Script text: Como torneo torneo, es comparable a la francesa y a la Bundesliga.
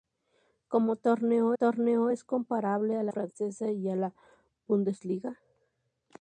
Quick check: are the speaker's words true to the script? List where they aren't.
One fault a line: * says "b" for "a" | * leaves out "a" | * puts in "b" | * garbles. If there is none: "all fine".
all fine